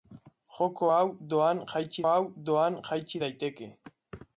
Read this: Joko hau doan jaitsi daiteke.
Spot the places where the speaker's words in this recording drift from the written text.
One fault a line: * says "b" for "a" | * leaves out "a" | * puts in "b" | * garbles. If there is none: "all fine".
* puts in "hau doan jaitsi"